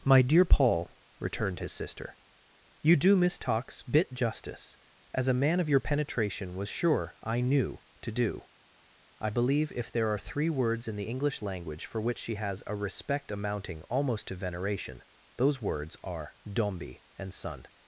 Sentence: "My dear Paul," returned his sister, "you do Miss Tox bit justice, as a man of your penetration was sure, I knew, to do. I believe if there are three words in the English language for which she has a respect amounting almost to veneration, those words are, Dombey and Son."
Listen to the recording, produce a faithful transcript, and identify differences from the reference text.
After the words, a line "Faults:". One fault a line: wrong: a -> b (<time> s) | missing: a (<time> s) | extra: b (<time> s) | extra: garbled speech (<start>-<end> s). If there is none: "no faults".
"My dear Paul," returned his sister, "you do Miss Tox bit justice, as a man of your penetration was sure, I knew, to do. I believe if there are three words in the English language for which she has a respect amounting almost to veneration, those words are, Dombey and Son."
Faults:
no faults